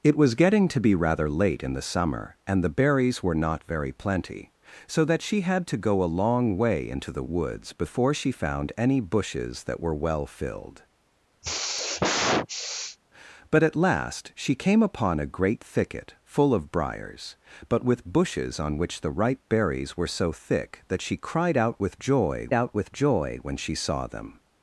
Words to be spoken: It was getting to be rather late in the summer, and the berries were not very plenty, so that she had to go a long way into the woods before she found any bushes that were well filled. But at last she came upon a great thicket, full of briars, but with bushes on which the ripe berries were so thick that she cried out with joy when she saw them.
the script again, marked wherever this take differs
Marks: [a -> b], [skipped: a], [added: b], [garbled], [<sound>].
It was getting to be rather late in the summer, and the berries were not very plenty, so that she had to go a long way into the woods before she found any bushes that were well filled. [sigh] But at last she came upon a great thicket, full of briars, but with bushes on which the ripe berries were so thick that she cried out with joy [added: out with joy] when she saw them.